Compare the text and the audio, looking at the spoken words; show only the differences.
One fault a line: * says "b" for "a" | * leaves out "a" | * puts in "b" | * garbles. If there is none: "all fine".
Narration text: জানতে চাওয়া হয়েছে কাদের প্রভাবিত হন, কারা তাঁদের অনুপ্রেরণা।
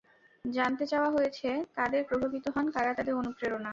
all fine